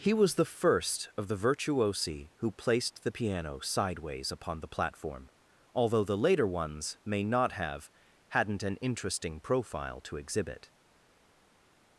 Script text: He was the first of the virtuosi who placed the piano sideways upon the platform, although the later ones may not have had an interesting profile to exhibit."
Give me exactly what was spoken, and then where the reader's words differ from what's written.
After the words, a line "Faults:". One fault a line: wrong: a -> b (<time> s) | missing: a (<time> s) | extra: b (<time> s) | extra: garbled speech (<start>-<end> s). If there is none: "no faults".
He was the first of the virtuosi who placed the piano sideways upon the platform, although the later ones may not have hadn't an interesting profile to exhibit."
Faults:
wrong: had -> hadn't (8.3 s)